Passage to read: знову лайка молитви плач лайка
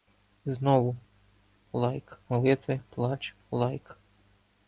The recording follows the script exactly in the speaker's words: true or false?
true